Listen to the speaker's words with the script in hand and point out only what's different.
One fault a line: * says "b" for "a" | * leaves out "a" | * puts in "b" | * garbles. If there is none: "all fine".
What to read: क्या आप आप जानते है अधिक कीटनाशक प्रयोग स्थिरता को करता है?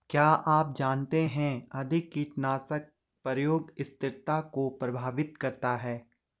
* leaves out "आप"
* puts in "प्रभावित"